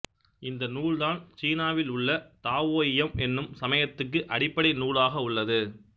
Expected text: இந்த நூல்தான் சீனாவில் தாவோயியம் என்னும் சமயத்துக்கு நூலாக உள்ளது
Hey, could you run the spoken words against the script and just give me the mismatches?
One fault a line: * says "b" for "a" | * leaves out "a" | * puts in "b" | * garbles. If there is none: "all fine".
* puts in "உள்ள"
* puts in "அடிப்படை"